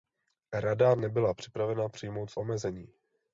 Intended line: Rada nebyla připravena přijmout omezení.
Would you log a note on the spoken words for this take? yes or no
no